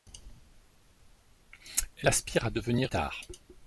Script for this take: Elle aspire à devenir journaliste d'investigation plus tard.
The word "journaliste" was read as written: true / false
false